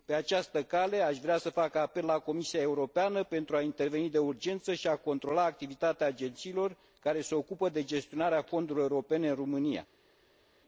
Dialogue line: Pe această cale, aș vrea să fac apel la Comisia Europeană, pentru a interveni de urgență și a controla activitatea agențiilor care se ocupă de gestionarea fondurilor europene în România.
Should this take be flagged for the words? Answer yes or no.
no